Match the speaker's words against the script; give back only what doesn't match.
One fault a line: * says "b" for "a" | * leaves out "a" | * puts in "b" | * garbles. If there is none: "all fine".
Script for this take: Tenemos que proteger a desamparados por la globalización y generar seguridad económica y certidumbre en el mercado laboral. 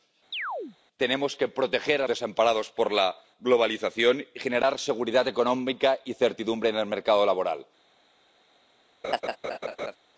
all fine